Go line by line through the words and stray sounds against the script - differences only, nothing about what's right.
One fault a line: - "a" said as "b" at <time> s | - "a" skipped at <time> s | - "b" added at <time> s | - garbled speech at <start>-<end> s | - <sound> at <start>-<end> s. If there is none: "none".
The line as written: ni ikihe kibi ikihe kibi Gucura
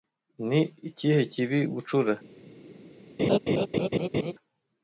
- "ikihe kibi" skipped at 1.6 s
- laugh at 3.2-4.3 s